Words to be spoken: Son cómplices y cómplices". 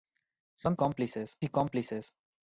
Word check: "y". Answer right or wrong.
right